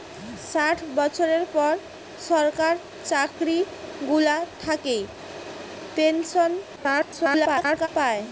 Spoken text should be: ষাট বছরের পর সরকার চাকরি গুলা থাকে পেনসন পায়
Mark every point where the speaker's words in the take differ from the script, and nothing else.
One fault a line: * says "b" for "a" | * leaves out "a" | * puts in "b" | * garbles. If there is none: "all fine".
* garbles